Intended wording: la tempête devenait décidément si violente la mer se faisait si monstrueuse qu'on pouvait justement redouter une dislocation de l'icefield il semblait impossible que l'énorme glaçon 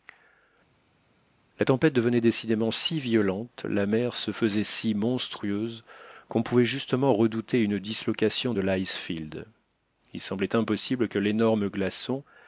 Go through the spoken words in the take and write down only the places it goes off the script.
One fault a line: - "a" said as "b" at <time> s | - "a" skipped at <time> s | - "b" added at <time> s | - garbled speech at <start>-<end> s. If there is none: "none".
none